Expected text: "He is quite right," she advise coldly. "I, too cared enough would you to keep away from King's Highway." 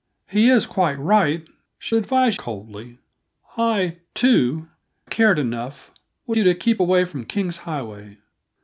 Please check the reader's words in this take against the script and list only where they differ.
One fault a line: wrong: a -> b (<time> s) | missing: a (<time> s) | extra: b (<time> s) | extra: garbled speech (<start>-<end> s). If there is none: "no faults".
no faults